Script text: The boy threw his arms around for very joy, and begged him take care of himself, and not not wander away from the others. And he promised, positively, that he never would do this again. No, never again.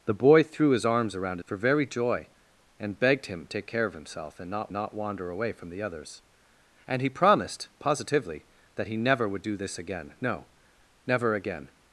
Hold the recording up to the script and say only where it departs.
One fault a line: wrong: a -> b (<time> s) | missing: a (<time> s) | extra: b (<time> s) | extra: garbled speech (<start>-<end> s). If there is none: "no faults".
no faults